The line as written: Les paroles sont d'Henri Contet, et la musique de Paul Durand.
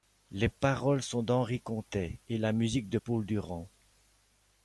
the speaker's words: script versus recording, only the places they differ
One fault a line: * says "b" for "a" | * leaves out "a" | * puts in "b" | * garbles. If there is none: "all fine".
all fine